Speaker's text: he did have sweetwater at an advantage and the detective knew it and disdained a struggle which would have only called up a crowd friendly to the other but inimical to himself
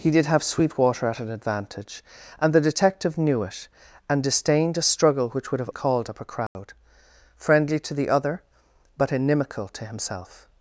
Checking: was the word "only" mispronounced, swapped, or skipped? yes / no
yes